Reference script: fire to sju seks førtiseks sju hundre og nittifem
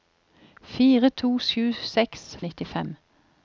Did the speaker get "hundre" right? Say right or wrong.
wrong